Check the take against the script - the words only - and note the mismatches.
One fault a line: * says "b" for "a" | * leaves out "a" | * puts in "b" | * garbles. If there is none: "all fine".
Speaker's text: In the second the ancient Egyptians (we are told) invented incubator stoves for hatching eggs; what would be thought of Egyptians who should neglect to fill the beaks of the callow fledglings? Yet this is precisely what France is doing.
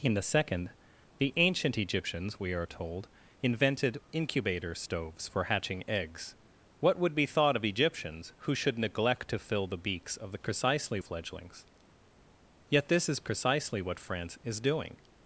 * says "precisely" for "callow"